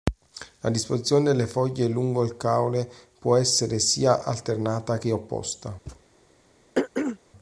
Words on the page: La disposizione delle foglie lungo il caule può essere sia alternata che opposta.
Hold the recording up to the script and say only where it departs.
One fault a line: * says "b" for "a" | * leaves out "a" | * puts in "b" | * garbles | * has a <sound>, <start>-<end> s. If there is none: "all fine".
* has a thud, 5.9-6.0 s
* has a throat clearing, 6.7-7.2 s